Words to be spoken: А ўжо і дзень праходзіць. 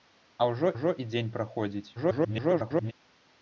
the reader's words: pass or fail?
fail